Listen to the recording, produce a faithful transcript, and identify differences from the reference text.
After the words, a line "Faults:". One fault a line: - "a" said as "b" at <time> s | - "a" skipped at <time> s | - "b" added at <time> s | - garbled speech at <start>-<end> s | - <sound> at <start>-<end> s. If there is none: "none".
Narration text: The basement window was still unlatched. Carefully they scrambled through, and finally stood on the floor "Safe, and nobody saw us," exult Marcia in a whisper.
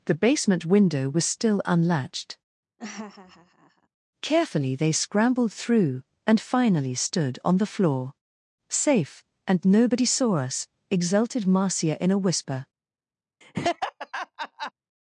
The basement window was still unlatched. Carefully they scrambled through, and finally stood on the floor "Safe, and nobody saw us," exulted Marcia in a whisper.
Faults:
- laugh at 2.8-3.9 s
- "exult" said as "exulted" at 10.9 s
- laugh at 13.4-14.7 s